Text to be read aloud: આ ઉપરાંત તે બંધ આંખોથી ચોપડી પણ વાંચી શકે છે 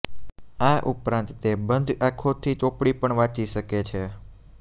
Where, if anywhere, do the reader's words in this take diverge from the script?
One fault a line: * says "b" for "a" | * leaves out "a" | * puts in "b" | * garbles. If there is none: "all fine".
all fine